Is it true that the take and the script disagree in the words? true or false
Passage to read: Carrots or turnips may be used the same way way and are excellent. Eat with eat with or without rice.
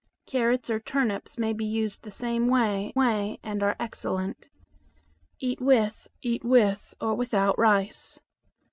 false